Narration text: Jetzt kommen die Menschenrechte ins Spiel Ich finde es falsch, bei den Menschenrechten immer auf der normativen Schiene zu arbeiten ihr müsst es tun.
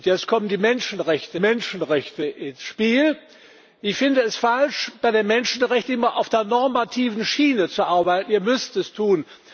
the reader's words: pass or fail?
fail